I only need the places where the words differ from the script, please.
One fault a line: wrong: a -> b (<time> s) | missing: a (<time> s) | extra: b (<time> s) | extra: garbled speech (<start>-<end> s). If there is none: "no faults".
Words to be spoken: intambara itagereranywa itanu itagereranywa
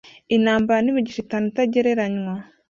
wrong: itagereranywa -> n'imigisha (0.8 s)